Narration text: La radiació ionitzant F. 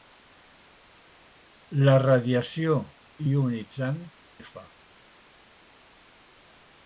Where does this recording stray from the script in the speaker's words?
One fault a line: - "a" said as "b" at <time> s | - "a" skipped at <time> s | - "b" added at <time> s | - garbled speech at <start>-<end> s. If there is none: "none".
none